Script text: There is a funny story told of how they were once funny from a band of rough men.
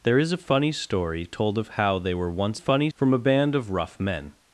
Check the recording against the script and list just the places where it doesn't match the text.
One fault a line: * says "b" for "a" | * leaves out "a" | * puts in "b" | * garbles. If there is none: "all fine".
all fine